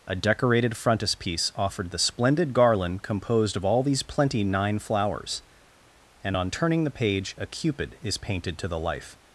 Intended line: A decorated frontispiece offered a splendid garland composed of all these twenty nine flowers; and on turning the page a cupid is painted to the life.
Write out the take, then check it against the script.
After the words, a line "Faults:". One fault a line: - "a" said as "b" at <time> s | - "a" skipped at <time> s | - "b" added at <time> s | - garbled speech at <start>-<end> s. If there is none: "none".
A decorated frontispiece offered the splendid garland composed of all these plenty nine flowers; and on turning the page a cupid is painted to the life.
Faults:
- "a" said as "the" at 1.9 s
- "twenty" said as "plenty" at 4.0 s